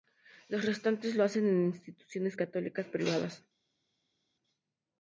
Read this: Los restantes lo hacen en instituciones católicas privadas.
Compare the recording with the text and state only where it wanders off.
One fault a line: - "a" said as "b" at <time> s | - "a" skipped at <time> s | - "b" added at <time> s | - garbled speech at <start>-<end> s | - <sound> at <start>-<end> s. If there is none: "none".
none